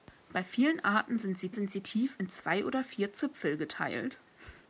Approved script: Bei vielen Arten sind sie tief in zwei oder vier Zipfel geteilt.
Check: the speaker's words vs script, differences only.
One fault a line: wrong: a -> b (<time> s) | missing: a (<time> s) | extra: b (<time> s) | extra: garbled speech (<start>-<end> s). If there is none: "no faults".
extra: sind sie (1.5 s)